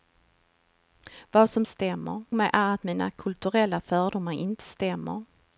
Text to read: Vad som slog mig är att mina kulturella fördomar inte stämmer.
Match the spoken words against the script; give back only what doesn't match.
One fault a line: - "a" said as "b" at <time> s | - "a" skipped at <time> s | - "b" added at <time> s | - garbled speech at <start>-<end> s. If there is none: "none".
- "slog" said as "stämmer" at 1.6 s